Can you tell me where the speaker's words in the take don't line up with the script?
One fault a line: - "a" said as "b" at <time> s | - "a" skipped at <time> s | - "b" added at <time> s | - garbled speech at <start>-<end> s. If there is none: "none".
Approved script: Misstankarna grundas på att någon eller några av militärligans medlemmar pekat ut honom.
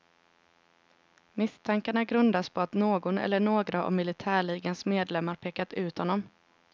none